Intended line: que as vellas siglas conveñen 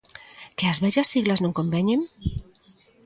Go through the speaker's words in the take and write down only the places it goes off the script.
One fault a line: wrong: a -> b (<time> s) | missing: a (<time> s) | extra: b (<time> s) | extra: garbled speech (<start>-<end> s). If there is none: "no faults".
extra: non (1.4 s)